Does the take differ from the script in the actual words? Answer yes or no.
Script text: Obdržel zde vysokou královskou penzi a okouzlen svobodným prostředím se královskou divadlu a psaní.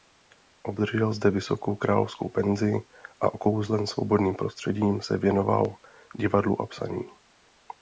yes